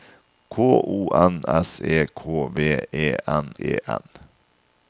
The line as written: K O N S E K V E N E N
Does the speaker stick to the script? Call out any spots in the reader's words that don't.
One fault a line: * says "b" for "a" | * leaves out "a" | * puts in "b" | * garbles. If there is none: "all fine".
all fine